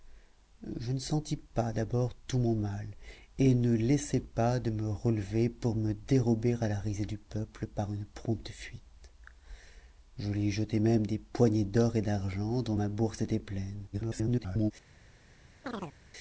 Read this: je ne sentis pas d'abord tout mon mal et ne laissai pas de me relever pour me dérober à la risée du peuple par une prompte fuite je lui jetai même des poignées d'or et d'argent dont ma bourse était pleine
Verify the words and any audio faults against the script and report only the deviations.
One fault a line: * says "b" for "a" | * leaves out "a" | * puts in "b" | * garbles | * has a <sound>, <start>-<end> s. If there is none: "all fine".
* garbles
* has a chirp, 15.6-16.0 s